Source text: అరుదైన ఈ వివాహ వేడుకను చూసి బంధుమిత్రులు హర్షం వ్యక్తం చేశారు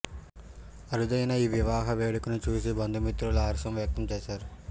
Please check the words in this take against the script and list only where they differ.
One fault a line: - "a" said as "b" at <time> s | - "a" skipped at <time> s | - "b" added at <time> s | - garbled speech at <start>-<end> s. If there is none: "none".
none